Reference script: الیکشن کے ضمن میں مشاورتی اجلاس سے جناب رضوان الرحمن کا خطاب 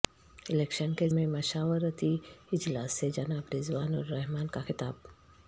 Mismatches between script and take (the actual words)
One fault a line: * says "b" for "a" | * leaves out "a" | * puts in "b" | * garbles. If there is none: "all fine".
* leaves out "ضمن"